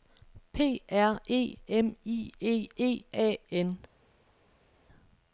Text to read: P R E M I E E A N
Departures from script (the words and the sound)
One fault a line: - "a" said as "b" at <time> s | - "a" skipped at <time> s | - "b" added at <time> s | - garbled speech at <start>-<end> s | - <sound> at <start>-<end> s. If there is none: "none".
none